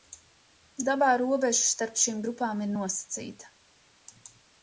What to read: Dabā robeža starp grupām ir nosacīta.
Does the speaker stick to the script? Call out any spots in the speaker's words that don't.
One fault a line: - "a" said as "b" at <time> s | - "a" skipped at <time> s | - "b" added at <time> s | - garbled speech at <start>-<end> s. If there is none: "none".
- "šīm" added at 2.0 s